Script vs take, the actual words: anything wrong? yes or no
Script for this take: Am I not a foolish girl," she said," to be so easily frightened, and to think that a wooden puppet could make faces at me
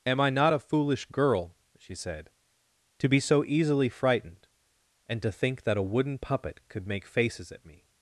no